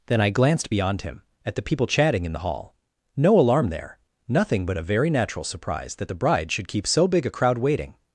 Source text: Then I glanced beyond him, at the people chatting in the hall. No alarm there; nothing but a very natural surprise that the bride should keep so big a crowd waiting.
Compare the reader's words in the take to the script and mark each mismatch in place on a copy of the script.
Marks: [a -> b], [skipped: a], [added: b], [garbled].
Then I glanced beyond him, at the people chatting in the hall. No alarm there; nothing but a very natural surprise that the bride should keep so big a crowd waiting.